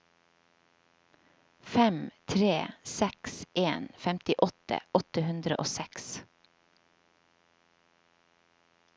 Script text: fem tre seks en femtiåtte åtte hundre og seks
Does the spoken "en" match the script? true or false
true